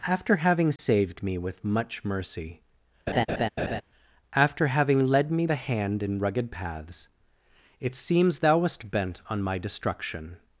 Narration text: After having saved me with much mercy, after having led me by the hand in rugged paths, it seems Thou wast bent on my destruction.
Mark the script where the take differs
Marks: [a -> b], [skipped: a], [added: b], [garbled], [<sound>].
After having saved [dropout] me with much mercy, [laugh] after having led me [skipped: by] the hand in rugged paths, it seems Thou wast bent on my destruction.